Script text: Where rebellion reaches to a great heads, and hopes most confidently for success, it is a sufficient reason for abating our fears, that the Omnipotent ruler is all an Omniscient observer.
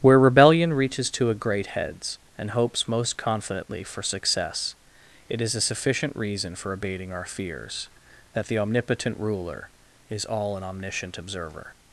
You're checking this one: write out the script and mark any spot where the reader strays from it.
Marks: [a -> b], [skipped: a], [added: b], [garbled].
Where rebellion reaches to a great heads, and hopes most confidently for success, it is a sufficient reason for abating our fears, that the Omnipotent ruler is all an Omniscient observer.